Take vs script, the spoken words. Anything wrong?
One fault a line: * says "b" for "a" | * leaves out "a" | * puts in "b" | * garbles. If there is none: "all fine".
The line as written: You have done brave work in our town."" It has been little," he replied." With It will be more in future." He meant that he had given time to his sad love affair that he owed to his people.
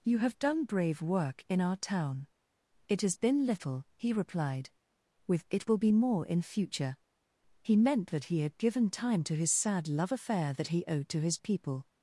all fine